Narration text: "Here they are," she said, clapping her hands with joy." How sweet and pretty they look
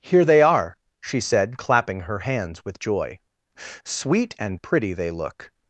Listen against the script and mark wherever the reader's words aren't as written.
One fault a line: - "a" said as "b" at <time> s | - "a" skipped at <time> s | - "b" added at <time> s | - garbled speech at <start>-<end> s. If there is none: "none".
- "How" skipped at 3.2 s